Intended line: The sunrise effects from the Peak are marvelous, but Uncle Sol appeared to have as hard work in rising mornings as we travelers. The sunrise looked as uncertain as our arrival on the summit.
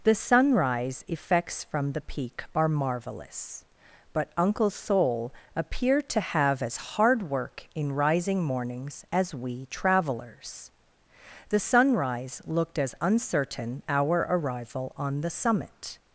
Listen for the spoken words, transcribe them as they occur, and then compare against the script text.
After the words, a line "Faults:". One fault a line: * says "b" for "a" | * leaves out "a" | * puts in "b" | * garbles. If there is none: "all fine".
The sunrise effects from the Peak are marvelous, but Uncle Sol appeared to have as hard work in rising mornings as we travelers. The sunrise looked as uncertain our arrival on the summit.
Faults:
* leaves out "as"